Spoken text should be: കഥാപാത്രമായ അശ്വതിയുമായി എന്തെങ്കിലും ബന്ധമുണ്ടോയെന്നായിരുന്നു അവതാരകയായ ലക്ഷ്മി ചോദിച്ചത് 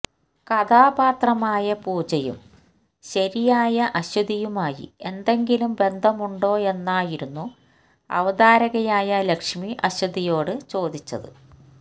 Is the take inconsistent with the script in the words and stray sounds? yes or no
yes